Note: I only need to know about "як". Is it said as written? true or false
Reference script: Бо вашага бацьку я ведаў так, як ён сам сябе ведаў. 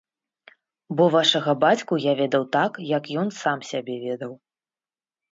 true